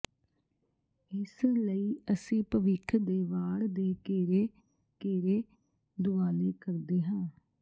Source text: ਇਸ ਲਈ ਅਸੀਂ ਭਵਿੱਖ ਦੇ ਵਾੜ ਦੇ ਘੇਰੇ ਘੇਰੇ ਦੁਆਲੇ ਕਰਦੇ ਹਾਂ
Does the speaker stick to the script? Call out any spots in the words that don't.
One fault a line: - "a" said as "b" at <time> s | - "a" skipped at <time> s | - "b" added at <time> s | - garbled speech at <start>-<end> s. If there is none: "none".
none